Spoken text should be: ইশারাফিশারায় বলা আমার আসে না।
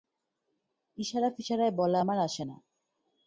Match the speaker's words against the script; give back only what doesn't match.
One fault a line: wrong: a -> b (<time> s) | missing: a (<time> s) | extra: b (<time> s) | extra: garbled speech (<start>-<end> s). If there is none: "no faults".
no faults